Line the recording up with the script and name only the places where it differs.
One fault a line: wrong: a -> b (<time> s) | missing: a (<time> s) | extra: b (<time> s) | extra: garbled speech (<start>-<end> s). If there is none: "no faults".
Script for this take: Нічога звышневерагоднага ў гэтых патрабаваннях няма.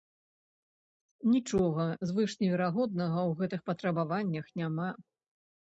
no faults